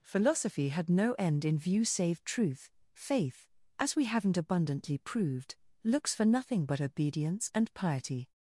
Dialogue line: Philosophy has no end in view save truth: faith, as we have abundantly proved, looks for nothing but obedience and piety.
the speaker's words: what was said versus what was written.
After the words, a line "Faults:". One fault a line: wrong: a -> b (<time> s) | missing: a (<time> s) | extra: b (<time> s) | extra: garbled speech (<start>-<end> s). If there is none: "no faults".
Philosophy had no end in view save truth: faith, as we haven't abundantly proved, looks for nothing but obedience and piety.
Faults:
wrong: has -> had (0.7 s)
wrong: have -> haven't (4.0 s)